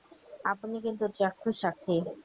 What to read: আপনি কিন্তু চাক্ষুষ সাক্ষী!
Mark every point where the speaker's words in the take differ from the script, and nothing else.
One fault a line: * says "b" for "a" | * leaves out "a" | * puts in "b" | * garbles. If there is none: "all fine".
all fine